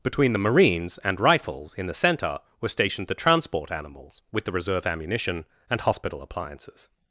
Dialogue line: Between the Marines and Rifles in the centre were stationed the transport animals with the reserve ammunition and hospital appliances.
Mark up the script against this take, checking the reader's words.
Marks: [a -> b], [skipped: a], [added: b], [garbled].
Between the Marines and Rifles in the centre were stationed the transport animals with the reserve ammunition and hospital appliances.